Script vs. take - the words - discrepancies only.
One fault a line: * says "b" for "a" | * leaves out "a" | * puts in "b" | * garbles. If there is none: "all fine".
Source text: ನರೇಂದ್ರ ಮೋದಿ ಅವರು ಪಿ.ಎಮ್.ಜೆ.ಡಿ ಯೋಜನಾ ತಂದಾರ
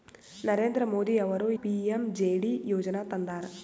all fine